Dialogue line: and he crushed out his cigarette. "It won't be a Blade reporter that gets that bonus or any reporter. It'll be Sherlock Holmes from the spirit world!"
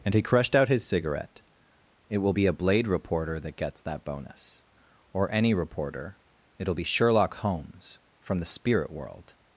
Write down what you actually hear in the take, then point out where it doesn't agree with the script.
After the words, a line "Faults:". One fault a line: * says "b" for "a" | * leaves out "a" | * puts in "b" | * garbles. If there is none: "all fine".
and he crushed out his cigarette. "It will be a Blade reporter that gets that bonus or any reporter. It'll be Sherlock Holmes from the spirit world!"
Faults:
* says "will" for "won't"